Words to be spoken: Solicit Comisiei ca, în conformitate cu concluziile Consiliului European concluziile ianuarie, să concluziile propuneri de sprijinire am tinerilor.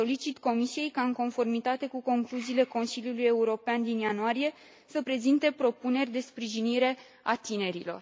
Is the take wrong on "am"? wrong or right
wrong